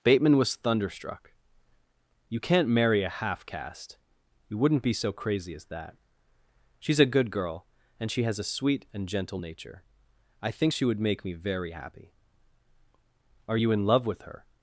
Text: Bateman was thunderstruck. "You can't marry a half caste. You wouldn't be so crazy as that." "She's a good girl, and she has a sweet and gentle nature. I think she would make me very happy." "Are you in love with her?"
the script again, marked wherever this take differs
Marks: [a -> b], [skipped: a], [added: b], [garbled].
Bateman was thunderstruck. "You can't marry a half caste. You wouldn't be so crazy as that." "She's a good girl, and she has a sweet and gentle nature. I think she would make me very happy." "Are you in love with her?"